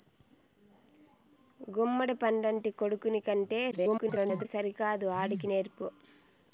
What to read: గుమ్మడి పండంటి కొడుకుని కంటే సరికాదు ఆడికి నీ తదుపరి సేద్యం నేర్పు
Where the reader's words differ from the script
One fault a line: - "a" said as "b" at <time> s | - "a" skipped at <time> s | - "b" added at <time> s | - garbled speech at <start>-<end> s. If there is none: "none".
- garbled speech at 3.7-4.5 s
- "నీ తదుపరి సేద్యం" skipped at 5.5 s